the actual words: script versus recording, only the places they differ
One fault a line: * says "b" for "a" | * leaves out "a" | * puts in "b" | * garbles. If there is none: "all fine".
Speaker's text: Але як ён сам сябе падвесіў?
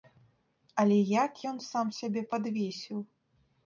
all fine